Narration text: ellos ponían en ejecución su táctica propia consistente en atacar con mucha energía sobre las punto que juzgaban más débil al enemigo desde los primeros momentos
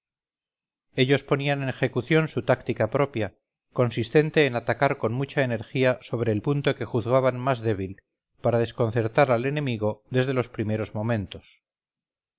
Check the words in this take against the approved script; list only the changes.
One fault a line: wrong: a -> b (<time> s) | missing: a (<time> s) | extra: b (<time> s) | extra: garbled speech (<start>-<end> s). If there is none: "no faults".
wrong: las -> el (6.3 s)
extra: para desconcertar (8.4 s)